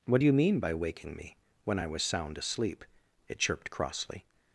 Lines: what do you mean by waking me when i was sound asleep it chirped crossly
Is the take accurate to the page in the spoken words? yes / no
yes